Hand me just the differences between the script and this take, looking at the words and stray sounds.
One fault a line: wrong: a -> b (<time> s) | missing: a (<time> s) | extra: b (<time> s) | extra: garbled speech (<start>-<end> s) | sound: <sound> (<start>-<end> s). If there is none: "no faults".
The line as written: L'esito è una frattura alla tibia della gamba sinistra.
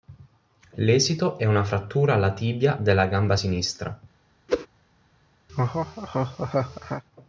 sound: whoosh (4.5-4.7 s)
sound: laugh (5.5-7.0 s)